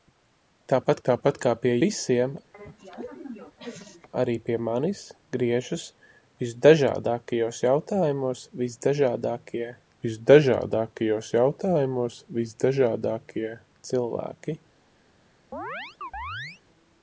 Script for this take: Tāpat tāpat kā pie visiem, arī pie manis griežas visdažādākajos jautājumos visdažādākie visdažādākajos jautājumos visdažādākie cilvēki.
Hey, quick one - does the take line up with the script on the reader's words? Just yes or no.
yes